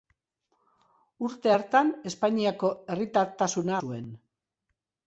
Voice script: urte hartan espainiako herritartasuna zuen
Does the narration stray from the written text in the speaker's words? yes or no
no